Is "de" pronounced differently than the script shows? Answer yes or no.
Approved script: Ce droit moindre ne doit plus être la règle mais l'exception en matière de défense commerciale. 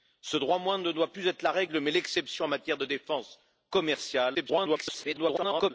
no